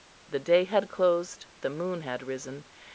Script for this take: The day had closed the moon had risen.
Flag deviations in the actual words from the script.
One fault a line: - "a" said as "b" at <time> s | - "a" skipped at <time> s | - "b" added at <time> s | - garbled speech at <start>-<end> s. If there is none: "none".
none